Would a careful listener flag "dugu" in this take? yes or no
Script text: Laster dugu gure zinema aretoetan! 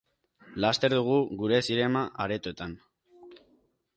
no